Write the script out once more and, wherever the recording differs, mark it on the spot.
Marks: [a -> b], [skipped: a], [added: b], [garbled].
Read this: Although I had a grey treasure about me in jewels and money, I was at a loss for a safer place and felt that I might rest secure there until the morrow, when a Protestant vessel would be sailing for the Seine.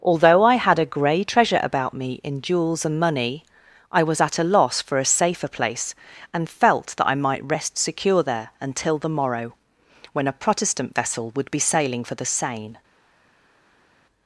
Although I had a grey treasure about me in jewels and money, I was at a loss for a safer place and felt that I might rest secure there until the morrow, when a Protestant vessel would be sailing for the Seine.